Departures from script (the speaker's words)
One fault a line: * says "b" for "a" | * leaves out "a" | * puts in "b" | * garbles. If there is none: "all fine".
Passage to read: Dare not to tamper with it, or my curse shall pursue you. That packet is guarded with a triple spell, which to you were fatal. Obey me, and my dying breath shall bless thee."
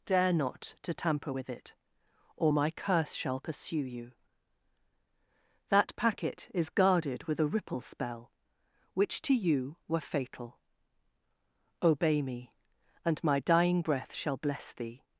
* says "ripple" for "triple"